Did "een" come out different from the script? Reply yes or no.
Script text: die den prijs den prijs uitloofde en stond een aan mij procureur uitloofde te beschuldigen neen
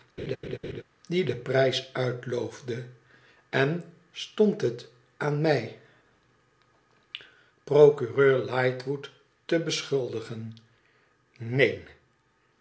yes